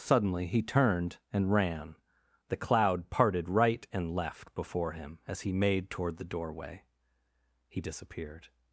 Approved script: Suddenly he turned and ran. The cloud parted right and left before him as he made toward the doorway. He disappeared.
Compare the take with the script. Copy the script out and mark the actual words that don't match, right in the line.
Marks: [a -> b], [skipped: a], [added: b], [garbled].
Suddenly he turned and ran. The cloud parted right and left before him as he made toward the doorway. He disappeared.